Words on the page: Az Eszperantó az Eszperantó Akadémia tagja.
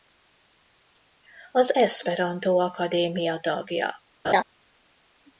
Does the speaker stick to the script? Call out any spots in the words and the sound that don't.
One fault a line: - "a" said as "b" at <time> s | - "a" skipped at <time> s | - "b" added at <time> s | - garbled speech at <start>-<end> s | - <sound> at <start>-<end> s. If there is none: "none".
- "az Eszperantó" skipped at 2.6 s
- laugh at 4.2-4.4 s